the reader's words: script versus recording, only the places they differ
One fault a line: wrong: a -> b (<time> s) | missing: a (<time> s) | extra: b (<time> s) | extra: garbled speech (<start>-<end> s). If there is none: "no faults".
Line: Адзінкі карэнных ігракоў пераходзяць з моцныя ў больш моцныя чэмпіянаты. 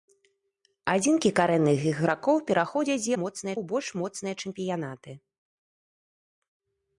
no faults